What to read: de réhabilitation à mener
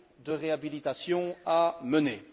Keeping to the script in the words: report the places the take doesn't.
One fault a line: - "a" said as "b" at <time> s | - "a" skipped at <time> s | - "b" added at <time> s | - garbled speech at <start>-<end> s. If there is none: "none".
none